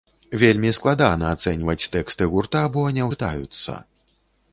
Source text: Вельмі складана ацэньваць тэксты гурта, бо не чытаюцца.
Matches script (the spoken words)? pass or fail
pass